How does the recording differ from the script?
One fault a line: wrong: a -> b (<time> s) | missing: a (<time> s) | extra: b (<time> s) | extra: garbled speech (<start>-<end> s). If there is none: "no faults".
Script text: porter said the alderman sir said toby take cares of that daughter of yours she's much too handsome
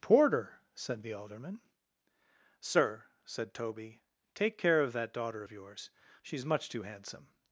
wrong: cares -> care (4.6 s)